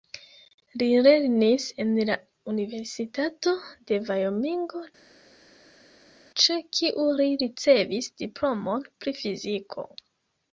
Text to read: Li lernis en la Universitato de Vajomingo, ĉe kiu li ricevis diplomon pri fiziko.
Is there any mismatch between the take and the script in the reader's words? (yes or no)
no